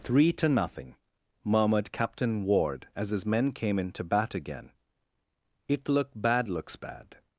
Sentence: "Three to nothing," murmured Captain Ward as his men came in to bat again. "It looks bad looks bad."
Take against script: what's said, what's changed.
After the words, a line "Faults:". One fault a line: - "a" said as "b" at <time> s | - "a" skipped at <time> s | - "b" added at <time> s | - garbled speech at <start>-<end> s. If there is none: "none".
"Three to nothing," murmured Captain Ward as his men came in to bat again. "It look bad looks bad."
Faults:
- "looks" said as "look" at 5.9 s